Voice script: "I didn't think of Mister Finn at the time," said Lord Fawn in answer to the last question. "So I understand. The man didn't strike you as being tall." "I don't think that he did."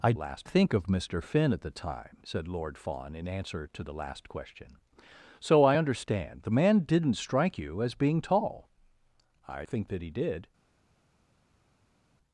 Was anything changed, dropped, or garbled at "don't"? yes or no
yes